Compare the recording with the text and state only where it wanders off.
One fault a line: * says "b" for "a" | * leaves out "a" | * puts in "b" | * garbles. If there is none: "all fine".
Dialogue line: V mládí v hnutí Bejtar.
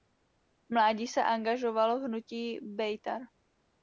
* puts in "se angažoval"